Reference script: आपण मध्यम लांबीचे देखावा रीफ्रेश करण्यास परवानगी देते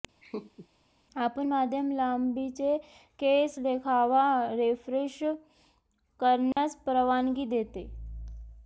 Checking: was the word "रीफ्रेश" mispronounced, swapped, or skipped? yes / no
no